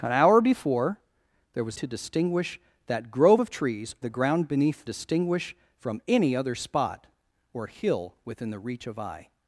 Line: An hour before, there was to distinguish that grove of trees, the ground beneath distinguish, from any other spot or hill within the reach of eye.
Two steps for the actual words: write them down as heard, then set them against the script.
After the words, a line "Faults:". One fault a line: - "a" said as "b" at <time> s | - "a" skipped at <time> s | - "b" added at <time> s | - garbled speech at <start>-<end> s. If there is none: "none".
An hour before, there was to distinguish that grove of trees, the ground beneath distinguish, from any other spot or hill within the reach of eye.
Faults:
none